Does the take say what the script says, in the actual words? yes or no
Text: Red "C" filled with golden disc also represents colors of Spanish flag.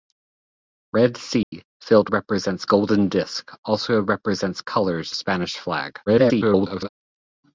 no